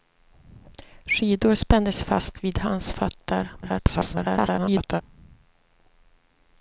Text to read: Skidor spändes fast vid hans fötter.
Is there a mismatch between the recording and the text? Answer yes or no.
yes